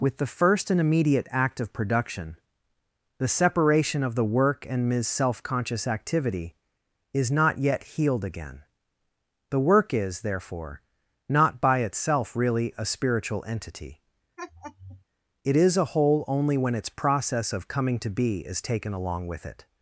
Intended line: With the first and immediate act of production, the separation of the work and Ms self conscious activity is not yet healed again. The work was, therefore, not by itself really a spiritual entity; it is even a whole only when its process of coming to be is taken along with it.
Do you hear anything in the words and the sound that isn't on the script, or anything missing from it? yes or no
yes